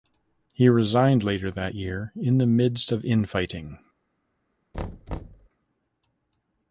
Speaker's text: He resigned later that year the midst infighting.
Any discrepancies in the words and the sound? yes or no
yes